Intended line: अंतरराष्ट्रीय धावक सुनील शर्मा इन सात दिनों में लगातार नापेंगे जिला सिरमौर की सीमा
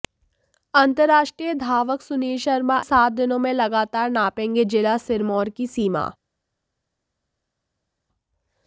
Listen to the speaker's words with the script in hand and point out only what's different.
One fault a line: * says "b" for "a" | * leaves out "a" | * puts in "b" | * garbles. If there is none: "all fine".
* leaves out "इन"